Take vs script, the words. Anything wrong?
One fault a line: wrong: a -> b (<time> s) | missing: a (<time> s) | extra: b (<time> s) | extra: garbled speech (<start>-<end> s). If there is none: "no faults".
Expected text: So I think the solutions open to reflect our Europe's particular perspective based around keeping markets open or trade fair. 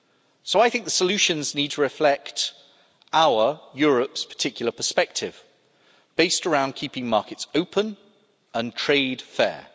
wrong: open -> need (1.6 s)
wrong: or -> and (8.5 s)